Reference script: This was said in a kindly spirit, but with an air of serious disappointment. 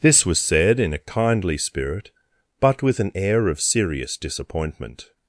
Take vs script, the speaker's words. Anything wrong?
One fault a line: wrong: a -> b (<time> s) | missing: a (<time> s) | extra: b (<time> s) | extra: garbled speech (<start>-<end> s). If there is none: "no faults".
no faults